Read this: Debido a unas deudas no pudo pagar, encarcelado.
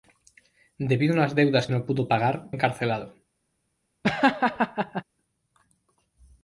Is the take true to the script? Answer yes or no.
yes